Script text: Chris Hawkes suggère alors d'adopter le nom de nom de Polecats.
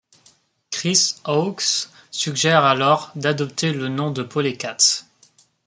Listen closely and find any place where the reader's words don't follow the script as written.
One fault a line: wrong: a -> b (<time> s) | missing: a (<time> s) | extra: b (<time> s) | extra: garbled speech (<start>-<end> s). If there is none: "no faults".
missing: nom de (4.2 s)